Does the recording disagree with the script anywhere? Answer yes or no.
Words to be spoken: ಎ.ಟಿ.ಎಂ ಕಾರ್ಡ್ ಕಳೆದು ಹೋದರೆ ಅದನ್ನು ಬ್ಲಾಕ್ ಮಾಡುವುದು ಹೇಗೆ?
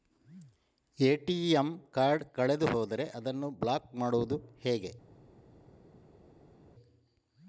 no